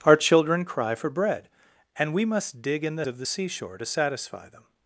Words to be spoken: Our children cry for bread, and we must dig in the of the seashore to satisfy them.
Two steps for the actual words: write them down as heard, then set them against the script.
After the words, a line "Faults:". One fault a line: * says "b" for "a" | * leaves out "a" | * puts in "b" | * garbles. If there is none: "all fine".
Our children cry for bread, and we must dig in the of the seashore to satisfy them.
Faults:
all fine